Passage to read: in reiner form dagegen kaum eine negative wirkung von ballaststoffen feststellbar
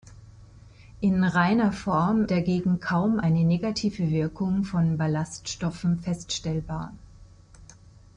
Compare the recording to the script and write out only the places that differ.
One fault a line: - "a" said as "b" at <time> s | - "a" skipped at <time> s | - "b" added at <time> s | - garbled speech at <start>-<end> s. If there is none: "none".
none